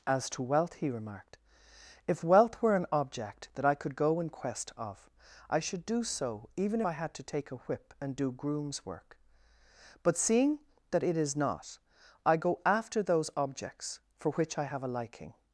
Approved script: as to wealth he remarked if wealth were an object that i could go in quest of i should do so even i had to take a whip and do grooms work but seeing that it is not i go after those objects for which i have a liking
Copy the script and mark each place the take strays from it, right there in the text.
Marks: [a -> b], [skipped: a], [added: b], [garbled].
as to wealth he remarked if wealth were an object that i could go in quest of i should do so even i had to take a whip and do grooms work but seeing that it is not i go after those objects for which i have a liking